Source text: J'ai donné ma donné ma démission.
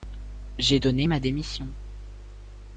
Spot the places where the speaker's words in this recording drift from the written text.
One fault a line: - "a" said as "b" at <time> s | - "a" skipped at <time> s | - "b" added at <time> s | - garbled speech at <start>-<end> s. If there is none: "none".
- "donné ma" skipped at 1.2 s